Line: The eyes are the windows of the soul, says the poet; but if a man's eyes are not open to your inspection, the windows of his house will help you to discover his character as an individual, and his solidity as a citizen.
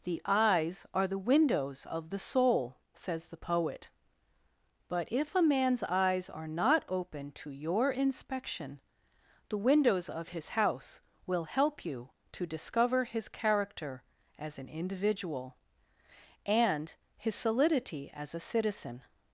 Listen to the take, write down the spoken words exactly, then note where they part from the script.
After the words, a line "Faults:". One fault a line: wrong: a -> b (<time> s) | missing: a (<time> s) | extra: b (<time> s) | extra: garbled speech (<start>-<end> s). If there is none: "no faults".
The eyes are the windows of the soul, says the poet; but if a man's eyes are not open to your inspection, the windows of his house will help you to discover his character as an individual, and his solidity as a citizen.
Faults:
no faults